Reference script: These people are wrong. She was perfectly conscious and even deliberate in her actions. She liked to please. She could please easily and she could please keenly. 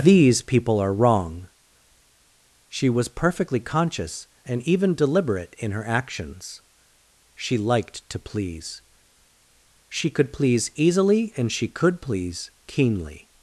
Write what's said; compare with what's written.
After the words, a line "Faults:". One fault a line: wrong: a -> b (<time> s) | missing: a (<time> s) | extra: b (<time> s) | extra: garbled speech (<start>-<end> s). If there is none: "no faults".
These people are wrong. She was perfectly conscious and even deliberate in her actions. She liked to please. She could please easily and she could please keenly.
Faults:
no faults